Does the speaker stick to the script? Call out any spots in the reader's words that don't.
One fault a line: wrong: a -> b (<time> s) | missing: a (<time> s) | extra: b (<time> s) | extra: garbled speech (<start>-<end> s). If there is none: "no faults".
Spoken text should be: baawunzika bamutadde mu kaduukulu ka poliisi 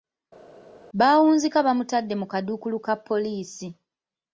no faults